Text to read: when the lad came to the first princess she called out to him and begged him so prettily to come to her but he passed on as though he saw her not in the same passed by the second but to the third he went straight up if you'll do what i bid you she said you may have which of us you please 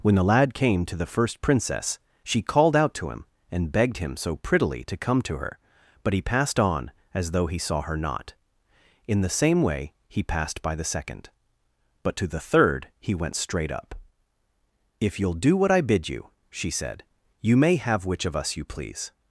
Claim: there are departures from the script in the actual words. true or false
true